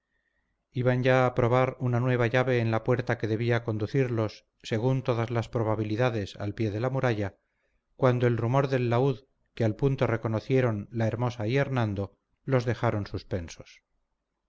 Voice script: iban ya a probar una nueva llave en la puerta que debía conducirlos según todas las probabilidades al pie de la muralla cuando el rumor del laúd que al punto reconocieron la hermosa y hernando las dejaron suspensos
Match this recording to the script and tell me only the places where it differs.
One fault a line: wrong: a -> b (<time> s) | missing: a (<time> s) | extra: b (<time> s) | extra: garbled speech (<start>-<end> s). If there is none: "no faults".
wrong: las -> los (12.5 s)